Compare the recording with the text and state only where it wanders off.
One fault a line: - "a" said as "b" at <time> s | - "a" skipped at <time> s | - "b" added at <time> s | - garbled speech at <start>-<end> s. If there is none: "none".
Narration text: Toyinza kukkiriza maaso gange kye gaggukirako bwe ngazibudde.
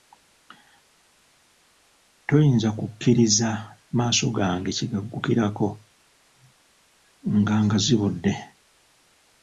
- "bwe" said as "nga" at 7.4 s